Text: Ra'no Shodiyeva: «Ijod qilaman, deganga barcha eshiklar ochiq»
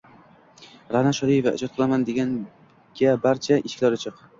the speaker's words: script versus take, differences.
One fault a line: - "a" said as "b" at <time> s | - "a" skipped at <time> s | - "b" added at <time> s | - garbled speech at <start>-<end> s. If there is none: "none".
none